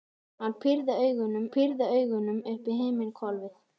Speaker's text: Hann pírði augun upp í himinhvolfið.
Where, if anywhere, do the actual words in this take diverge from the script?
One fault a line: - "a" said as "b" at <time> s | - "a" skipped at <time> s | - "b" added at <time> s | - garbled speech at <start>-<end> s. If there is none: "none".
- "pírði augun" added at 1.5 s